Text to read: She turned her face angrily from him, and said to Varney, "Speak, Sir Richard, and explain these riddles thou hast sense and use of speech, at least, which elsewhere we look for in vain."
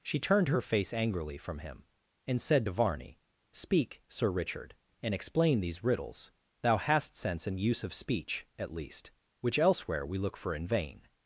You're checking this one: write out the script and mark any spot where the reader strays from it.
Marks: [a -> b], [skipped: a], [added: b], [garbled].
She turned her face angrily from him, and said to Varney, "Speak, Sir Richard, and explain these riddles thou hast sense and use of speech, at least, which elsewhere we look for in vain."